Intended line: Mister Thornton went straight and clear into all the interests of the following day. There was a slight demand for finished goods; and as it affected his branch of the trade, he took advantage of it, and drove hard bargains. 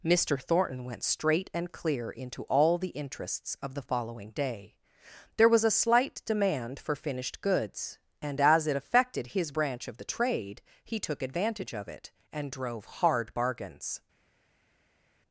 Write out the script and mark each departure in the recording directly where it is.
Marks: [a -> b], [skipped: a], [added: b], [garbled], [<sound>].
Mister Thornton went straight and clear into all the interests of the following day. There was a slight demand for finished goods; and as it affected his branch of the trade, he took advantage of it, and drove hard bargains.